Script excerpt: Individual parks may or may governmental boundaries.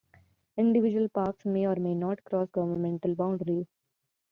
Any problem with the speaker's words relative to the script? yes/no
yes